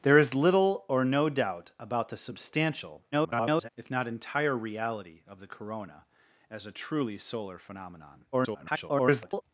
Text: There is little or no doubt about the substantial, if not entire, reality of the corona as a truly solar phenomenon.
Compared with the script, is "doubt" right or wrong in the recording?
right